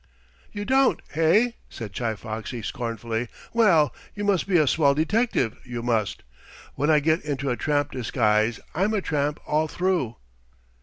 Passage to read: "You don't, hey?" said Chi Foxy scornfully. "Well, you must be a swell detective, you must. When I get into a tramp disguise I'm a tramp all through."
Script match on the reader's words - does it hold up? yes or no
yes